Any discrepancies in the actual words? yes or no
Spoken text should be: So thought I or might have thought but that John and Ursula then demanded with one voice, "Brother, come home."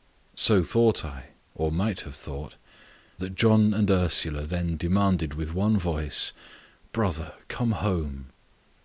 yes